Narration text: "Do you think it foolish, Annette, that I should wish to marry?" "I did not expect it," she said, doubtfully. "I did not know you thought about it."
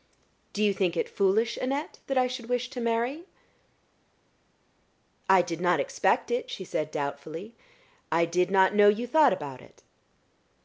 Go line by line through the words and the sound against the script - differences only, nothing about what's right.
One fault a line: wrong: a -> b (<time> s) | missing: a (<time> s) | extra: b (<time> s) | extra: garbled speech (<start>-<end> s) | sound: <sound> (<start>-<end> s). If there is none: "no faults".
no faults